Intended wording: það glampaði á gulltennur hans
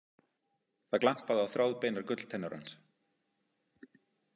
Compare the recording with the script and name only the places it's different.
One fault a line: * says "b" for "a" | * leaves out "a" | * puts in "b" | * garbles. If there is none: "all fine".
* puts in "þráðbeinar"